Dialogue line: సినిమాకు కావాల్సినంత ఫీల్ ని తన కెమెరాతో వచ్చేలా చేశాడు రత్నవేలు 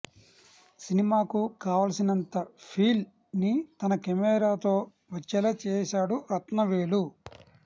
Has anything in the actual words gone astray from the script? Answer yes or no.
no